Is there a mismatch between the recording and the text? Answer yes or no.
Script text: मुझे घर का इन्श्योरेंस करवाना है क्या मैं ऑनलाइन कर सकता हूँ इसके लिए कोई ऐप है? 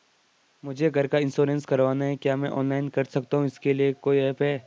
no